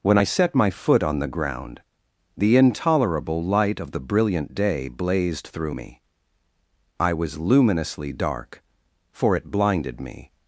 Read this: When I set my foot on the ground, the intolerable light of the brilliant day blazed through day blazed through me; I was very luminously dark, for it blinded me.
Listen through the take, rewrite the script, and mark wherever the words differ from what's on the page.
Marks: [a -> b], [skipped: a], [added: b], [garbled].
When I set my foot on the ground, the intolerable light of the brilliant day blazed through [skipped: day blazed through] me; I was [skipped: very] luminously dark, for it blinded me.